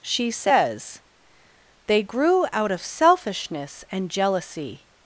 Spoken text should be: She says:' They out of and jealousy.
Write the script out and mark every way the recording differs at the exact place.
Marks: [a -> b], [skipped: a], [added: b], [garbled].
She says:' They [added: grew] out of [added: selfishness] and jealousy.